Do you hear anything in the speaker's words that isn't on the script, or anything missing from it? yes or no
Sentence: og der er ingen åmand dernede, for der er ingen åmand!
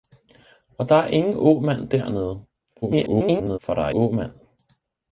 yes